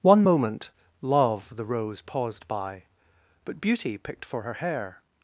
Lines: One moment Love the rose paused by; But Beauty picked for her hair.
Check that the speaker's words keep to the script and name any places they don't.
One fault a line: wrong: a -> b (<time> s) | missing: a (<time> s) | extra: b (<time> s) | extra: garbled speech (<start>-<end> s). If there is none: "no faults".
no faults